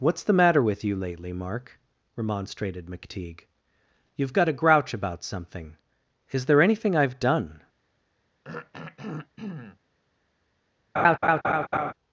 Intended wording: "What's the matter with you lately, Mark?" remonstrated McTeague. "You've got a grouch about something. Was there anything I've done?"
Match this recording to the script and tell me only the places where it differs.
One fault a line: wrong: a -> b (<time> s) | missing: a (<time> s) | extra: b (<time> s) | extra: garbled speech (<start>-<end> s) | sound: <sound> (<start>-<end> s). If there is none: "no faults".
wrong: Was -> Is (6.3 s)
sound: throat clearing (8.4-9.8 s)
sound: laugh (11.0-11.9 s)